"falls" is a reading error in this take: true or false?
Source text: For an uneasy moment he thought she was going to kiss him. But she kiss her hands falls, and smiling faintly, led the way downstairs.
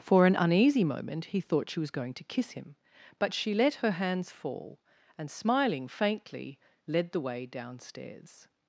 true